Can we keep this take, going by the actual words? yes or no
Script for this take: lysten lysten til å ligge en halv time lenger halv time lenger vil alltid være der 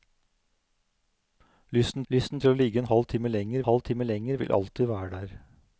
yes